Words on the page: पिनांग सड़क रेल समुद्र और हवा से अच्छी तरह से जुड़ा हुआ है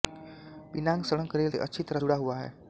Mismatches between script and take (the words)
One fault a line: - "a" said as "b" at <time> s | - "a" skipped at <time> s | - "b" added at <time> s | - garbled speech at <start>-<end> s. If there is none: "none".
- "समुद्र और हवा" skipped at 1.5 s
- "से" skipped at 2.0 s